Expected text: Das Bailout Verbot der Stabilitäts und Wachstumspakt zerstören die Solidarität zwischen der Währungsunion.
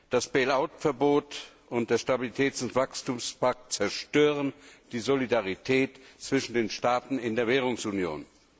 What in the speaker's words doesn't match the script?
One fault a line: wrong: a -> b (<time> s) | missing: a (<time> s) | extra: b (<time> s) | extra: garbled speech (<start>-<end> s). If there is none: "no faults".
extra: und (1.7 s)
extra: den Staaten in (6.5 s)